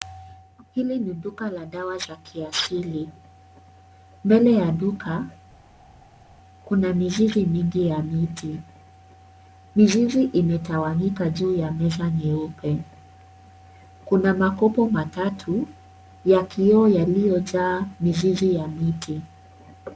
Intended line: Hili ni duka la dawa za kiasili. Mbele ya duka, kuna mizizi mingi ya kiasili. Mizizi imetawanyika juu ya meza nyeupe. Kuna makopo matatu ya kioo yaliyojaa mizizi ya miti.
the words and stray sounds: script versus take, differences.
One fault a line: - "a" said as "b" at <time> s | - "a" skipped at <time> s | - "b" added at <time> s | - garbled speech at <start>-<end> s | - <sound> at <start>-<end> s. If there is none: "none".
- "kiasili" said as "miti" at 8.0 s